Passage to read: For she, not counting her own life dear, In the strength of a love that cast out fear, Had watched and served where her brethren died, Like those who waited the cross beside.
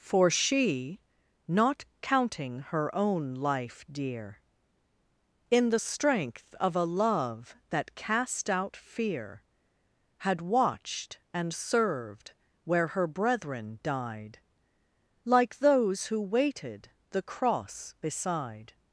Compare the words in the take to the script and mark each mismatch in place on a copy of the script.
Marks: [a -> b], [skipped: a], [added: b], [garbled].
For she, not counting her own life dear, In the strength of a love that cast out fear, Had watched and served where her brethren died, Like those who waited the cross beside.